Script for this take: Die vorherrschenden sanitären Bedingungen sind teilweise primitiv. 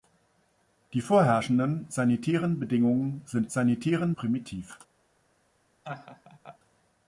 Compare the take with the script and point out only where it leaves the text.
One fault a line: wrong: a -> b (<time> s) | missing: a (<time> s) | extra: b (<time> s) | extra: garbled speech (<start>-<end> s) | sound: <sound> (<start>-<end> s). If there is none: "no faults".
wrong: teilweise -> sanitären (3.5 s)
sound: laugh (5.8-6.6 s)